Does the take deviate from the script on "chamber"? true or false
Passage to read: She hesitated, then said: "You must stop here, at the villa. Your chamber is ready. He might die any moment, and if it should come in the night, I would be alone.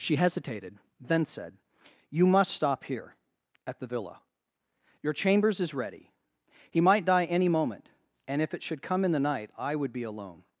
true